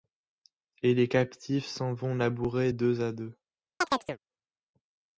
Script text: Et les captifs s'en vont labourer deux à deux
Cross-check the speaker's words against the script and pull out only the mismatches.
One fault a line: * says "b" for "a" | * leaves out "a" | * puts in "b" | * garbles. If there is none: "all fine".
all fine